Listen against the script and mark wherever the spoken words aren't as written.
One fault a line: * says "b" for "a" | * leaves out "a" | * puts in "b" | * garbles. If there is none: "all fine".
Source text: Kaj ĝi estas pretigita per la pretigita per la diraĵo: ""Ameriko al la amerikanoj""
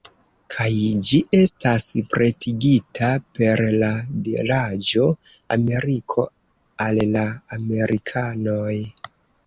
* leaves out "pretigita per la"